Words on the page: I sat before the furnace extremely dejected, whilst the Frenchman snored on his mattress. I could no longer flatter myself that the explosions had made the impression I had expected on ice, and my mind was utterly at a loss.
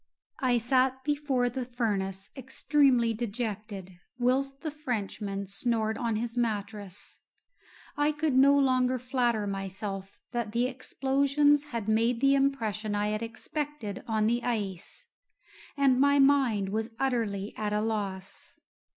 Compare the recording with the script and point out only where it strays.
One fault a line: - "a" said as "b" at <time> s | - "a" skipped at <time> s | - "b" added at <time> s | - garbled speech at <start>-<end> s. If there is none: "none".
- "the" added at 14.3 s